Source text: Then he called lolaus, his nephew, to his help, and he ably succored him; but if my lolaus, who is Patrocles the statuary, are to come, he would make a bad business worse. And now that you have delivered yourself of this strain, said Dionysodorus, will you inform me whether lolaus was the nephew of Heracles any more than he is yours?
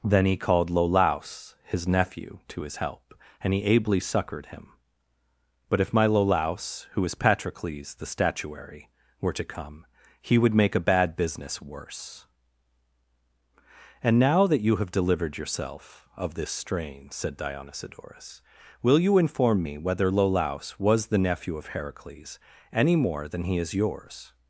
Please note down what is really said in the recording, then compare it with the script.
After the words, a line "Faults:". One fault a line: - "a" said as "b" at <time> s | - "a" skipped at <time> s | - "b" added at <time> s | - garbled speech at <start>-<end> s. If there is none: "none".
Then he called lolaus, his nephew, to his help, and he ably succored him; but if my lolaus, who is Patrocles the statuary, were to come, he would make a bad business worse. And now that you have delivered yourself of this strain, said Dionysodorus, will you inform me whether lolaus was the nephew of Heracles any more than he is yours?
Faults:
- "are" said as "were" at 9.2 s